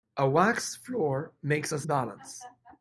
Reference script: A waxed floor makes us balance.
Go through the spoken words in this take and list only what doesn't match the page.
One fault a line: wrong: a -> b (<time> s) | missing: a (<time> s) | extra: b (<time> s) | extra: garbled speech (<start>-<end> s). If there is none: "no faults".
no faults